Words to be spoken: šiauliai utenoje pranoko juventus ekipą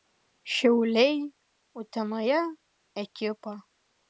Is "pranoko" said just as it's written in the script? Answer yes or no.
no